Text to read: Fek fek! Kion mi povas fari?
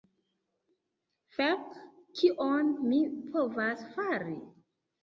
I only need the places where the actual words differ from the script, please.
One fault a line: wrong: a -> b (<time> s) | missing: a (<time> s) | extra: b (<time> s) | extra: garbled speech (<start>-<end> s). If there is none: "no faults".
missing: fek (1.8 s)